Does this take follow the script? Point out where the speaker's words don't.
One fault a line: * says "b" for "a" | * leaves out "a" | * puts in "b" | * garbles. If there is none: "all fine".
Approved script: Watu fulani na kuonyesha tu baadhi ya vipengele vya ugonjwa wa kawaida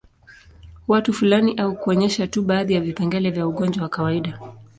* says "au" for "na"